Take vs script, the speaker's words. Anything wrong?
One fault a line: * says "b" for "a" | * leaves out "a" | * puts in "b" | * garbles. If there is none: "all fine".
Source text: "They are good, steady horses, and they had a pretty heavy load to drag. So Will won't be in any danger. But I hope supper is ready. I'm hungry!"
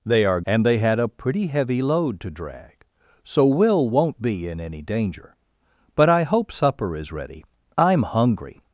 * leaves out "good steady horses"